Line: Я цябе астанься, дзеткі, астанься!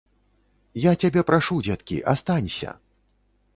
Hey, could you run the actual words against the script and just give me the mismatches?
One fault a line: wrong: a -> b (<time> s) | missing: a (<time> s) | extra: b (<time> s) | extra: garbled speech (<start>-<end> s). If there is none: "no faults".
wrong: астанься -> прашу (1.3 s)